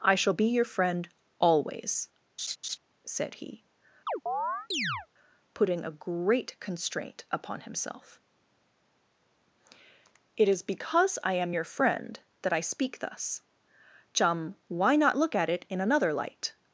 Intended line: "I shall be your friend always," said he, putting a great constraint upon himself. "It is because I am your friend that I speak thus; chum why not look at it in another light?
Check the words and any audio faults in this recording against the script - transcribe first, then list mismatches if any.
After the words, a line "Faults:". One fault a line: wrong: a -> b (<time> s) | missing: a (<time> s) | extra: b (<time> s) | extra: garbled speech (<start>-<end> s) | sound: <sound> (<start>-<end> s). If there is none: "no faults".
"I shall be your friend always," said he, putting a great constraint upon himself. "It is because I am your friend that I speak thus; chum why not look at it in another light?
Faults:
sound: laugh (2.4-2.8 s)
sound: chirp (4.1-5.1 s)